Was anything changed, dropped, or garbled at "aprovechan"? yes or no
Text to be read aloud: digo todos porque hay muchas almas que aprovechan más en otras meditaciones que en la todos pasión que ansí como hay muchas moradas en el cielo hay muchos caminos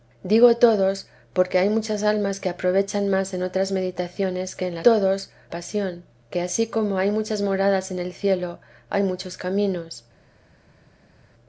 no